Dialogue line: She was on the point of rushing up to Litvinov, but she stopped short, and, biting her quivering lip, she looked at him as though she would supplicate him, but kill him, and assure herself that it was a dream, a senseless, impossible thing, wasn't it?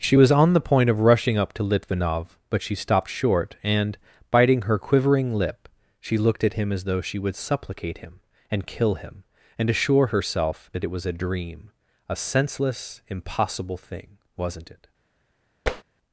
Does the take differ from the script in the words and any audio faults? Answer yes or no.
yes